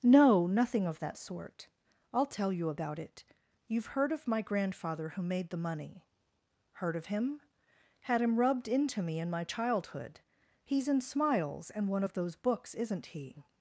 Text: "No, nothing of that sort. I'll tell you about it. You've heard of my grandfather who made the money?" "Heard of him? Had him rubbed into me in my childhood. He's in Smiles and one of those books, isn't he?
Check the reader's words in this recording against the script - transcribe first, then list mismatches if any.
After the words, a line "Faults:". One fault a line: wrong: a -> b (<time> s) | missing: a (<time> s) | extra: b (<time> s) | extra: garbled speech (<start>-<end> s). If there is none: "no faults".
"No, nothing of that sort. I'll tell you about it. You've heard of my grandfather who made the money?" "Heard of him? Had him rubbed into me in my childhood. He's in Smiles and one of those books, isn't he?
Faults:
no faults